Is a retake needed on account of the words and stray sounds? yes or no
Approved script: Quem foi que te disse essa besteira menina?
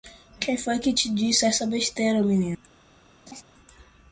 yes